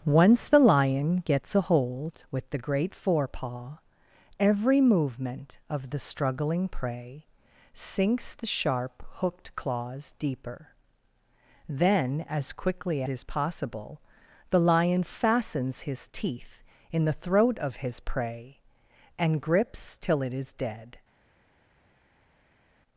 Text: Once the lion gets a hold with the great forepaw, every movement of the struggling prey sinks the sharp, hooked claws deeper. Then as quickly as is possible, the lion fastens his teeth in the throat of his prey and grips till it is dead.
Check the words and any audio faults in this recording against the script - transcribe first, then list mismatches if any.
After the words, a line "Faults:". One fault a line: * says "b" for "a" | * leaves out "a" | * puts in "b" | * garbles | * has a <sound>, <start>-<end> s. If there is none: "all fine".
Once the lion gets a hold with the great forepaw, every movement of the struggling prey sinks the sharp, hooked claws deeper. Then as quickly is possible, the lion fastens his teeth in the throat of his prey and grips till it is dead.
Faults:
* leaves out "as"